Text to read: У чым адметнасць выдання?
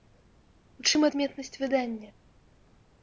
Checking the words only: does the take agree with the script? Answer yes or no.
yes